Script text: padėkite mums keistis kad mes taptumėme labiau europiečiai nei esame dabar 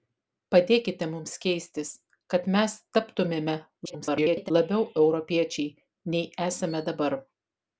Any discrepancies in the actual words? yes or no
yes